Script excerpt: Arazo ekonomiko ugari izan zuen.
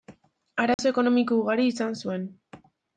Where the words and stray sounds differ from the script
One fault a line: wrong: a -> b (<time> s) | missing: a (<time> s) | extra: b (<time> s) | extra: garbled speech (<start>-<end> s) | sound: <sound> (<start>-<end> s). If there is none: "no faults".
sound: dropout (0.7-0.8 s)